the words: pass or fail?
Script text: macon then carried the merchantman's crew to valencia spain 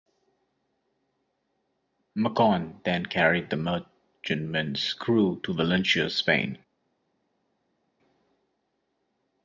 pass